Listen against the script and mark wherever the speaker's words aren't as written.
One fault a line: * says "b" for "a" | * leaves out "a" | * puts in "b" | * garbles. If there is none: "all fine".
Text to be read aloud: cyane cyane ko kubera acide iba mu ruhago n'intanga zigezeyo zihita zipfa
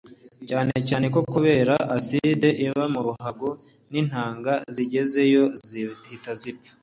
all fine